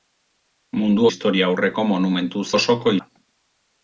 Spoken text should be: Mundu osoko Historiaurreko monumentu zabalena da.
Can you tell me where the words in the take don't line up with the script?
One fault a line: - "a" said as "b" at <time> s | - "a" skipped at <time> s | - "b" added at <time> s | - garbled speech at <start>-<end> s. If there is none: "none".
- "osoko" skipped at 1.1 s
- "zabalena" said as "osoko" at 2.5 s